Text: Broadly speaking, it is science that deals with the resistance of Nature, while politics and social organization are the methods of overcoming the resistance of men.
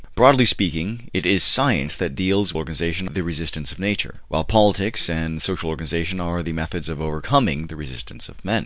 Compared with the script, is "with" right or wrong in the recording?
wrong